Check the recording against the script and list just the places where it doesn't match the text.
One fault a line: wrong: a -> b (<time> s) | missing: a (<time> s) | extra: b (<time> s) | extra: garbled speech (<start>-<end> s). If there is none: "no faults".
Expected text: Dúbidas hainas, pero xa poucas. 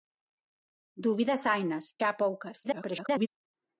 missing: pero (1.9 s)
extra: garbled speech (2.6-3.3 s)